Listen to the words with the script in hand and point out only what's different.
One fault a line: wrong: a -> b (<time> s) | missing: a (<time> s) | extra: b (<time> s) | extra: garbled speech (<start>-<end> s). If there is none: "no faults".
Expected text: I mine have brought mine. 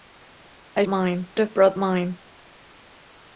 no faults